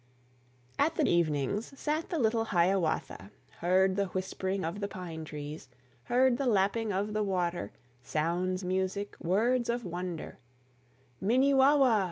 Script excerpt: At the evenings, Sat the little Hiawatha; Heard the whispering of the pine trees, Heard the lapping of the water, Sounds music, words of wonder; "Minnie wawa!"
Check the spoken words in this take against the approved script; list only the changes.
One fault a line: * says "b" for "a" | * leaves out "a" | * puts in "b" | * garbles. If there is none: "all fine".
all fine